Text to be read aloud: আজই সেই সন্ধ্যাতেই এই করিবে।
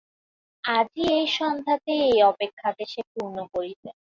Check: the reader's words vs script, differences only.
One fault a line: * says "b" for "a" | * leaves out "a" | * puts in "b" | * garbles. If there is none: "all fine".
* says "এই" for "সেই"
* puts in "অপেক্ষাকে সে পূর্ণ"